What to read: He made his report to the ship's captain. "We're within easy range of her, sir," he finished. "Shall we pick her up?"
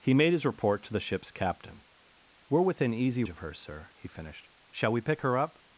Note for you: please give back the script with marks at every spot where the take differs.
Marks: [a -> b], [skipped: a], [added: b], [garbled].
He made his report to the ship's captain. "We're within easy [skipped: range] of her, sir," he finished. "Shall we pick her up?"